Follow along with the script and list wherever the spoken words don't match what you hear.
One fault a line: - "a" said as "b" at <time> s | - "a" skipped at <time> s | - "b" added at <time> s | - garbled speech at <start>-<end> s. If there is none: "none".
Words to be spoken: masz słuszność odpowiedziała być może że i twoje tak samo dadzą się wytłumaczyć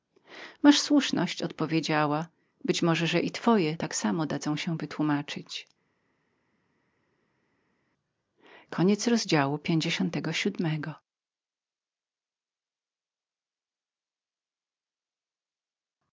none